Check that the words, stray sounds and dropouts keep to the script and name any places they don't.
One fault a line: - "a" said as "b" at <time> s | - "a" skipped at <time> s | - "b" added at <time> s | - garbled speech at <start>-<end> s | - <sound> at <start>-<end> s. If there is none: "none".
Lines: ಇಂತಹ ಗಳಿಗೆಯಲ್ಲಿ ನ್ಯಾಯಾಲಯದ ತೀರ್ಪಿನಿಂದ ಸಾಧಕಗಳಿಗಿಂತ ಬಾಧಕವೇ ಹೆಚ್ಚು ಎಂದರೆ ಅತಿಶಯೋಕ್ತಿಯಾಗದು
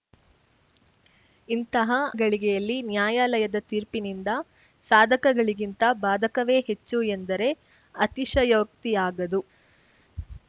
none